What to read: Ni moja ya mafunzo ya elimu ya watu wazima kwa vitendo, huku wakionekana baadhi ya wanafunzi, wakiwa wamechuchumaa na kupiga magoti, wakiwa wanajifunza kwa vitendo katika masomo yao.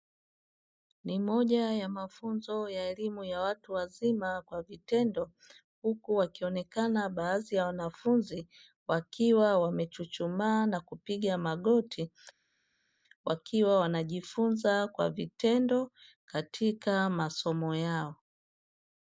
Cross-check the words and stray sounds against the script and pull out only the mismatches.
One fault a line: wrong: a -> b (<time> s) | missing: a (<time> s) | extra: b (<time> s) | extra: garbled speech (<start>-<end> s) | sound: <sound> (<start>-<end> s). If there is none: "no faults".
no faults